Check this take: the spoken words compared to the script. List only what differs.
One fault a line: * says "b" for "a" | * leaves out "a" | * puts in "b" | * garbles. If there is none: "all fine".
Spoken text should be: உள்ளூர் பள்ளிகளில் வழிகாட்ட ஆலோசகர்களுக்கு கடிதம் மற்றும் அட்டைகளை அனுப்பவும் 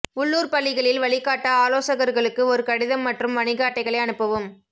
* puts in "ஒரு"
* puts in "வணிக"